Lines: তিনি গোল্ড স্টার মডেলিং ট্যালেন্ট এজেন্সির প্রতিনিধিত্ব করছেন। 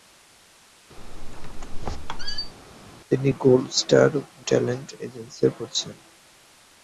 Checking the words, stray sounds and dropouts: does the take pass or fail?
fail